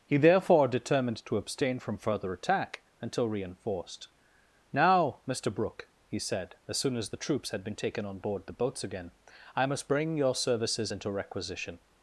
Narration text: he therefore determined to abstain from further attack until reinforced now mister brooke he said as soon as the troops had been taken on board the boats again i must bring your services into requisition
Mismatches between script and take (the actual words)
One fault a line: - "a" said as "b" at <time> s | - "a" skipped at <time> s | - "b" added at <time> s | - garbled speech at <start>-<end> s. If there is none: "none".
none